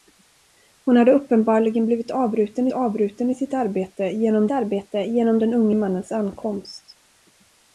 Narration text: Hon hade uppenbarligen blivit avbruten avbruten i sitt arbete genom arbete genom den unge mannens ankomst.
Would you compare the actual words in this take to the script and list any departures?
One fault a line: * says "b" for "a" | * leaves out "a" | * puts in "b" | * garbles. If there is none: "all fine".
all fine